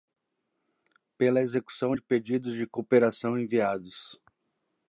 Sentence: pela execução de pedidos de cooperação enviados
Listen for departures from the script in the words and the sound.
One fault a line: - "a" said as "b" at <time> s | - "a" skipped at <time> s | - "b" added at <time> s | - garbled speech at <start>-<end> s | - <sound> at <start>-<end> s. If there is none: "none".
none